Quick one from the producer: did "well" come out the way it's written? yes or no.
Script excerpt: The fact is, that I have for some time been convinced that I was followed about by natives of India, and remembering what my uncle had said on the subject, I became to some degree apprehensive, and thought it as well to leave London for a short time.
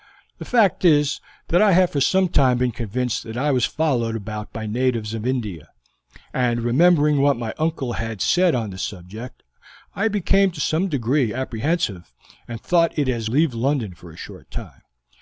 no